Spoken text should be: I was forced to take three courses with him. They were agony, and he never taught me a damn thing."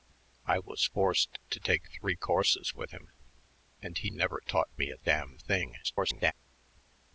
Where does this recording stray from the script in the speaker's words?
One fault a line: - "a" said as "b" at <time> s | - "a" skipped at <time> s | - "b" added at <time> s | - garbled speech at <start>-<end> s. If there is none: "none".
- "They were agony" skipped at 3.1 s
- garbled speech at 5.8-6.3 s